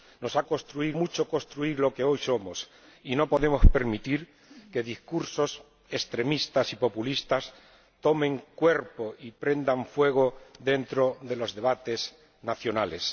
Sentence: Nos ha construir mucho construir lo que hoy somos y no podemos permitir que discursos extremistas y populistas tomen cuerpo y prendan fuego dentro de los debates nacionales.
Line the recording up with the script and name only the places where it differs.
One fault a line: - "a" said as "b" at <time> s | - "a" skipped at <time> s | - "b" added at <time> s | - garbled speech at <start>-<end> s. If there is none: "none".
none